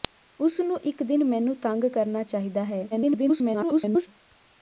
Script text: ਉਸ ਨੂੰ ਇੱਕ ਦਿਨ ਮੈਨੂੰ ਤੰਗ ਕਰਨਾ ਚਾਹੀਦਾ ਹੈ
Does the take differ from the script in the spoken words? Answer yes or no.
yes